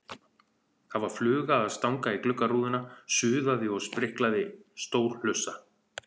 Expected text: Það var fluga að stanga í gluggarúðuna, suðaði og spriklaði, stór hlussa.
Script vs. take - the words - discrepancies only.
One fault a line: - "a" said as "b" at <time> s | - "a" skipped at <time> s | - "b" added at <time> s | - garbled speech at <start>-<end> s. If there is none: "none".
none